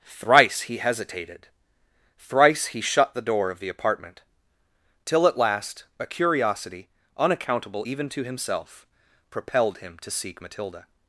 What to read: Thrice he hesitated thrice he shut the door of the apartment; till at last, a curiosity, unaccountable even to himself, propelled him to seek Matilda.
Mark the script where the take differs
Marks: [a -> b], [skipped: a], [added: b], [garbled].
Thrice he hesitated thrice he shut the door of the apartment; till at last, a curiosity, unaccountable even to himself, propelled him to seek Matilda.